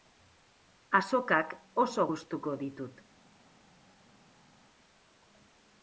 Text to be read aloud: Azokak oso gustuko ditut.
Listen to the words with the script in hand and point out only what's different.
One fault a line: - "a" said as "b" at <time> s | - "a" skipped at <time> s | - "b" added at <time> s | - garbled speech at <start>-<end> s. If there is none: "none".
none